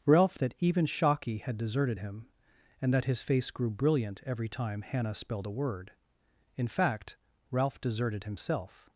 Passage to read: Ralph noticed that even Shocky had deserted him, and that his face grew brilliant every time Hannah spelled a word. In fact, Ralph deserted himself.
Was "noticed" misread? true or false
true